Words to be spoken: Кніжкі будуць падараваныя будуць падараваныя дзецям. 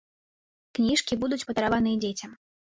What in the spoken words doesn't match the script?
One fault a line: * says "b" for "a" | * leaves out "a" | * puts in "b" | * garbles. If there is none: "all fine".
* leaves out "будуць падараваныя"